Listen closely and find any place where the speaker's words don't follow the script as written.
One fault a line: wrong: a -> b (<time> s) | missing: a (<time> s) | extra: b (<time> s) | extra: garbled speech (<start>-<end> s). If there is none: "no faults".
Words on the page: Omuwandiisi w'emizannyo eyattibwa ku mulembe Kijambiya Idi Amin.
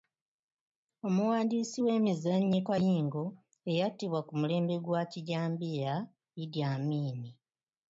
extra: kayingo (2.7 s)
extra: gwa (4.8 s)